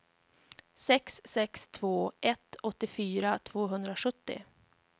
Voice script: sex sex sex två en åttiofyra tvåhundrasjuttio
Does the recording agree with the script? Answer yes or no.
no